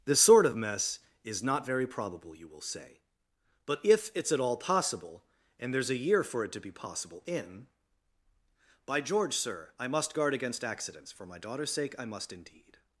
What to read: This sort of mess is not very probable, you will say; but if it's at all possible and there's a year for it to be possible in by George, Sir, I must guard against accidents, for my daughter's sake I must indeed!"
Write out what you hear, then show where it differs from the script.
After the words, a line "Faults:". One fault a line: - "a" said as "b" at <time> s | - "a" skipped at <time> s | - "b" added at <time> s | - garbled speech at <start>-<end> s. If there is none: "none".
This sort of mess is not very probable, you will say; but if it's at all possible and there's a year for it to be possible in by George, Sir, I must guard against accidents, for my daughter's sake I must indeed!"
Faults:
none